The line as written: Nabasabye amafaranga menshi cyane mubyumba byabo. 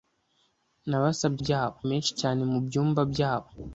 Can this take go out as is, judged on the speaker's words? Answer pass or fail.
fail